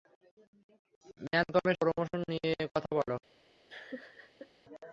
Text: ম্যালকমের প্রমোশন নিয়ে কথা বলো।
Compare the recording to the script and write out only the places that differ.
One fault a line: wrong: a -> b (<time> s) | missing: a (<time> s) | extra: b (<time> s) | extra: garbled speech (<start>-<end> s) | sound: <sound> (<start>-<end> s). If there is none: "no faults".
sound: laugh (3.7-4.5 s)